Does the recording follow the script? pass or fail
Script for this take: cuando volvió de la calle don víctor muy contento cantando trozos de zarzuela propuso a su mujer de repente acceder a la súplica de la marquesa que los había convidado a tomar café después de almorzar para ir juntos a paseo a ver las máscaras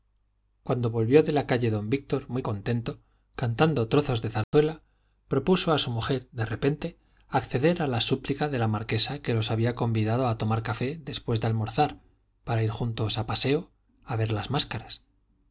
pass